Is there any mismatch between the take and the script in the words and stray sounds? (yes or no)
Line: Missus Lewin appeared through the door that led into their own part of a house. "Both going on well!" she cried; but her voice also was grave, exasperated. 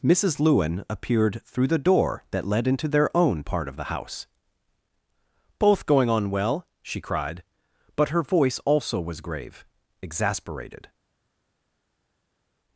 yes